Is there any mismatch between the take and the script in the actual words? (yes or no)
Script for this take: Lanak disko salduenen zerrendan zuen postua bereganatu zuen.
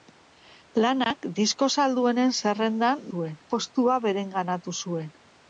no